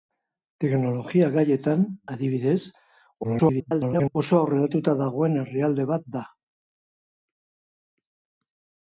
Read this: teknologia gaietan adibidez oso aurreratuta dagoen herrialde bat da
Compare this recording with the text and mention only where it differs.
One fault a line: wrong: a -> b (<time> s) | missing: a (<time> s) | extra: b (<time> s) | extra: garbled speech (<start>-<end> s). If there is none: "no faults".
extra: garbled speech (3.2-4.2 s)